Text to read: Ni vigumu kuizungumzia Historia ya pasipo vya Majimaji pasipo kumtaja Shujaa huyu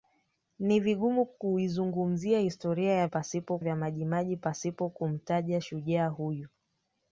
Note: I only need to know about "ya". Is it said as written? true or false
true